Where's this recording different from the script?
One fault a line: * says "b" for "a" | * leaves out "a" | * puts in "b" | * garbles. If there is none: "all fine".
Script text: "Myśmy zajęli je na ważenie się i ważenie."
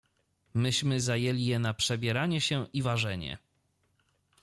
* says "przebieranie" for "ważenie"